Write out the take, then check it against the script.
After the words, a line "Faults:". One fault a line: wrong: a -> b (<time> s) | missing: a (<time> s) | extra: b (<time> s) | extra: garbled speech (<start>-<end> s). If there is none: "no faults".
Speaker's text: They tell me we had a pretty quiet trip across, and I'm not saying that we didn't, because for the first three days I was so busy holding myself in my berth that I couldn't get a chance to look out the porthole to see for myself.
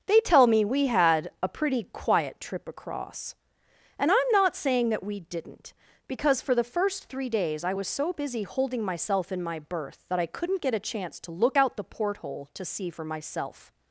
They tell me we had a pretty quiet trip across, and I'm not saying that we didn't, because for the first three days I was so busy holding myself in my berth that I couldn't get a chance to look out the porthole to see for myself.
Faults:
no faults